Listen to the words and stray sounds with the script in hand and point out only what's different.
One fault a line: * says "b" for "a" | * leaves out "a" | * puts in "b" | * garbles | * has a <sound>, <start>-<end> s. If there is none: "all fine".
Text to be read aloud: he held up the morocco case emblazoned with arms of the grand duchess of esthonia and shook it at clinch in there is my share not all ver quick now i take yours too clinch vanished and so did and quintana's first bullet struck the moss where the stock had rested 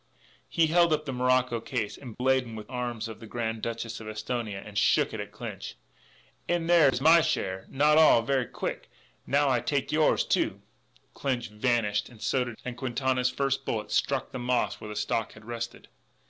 * has a dropout, 2.1-2.2 s